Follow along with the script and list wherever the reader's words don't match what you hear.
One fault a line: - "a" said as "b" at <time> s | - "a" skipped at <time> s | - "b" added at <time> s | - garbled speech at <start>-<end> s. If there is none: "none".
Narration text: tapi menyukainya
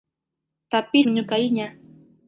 none